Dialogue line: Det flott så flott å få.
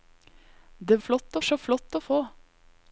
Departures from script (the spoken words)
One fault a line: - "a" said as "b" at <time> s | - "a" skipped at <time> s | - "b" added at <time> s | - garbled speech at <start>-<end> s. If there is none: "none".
none